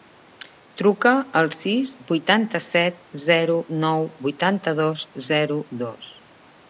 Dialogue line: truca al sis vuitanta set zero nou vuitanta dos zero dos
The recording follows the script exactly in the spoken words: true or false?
true